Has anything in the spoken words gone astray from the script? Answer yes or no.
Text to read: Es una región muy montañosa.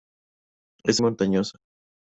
yes